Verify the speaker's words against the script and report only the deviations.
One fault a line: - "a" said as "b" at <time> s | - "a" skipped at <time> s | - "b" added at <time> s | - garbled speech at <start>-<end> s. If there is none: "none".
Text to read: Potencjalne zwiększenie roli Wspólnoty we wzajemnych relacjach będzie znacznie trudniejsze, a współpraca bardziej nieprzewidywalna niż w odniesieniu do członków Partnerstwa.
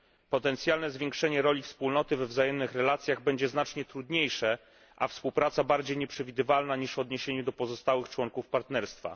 - "pozostałych" added at 7.5 s